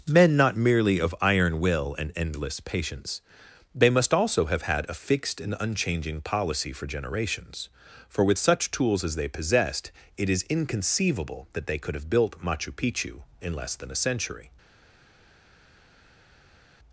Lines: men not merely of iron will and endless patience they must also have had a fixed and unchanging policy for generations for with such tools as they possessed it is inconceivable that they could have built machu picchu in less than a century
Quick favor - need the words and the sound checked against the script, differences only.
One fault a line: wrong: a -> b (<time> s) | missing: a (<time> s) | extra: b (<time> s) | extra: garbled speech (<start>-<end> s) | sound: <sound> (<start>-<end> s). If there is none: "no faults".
no faults